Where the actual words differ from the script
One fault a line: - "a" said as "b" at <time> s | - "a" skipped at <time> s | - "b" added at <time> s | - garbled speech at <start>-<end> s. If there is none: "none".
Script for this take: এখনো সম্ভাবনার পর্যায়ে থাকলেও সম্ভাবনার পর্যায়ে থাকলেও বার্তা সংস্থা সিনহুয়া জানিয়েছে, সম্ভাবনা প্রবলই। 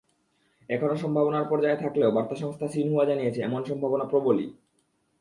- "সম্ভাবনার পর্যায়ে থাকলেও" skipped at 2.1 s
- "এমন" added at 3.4 s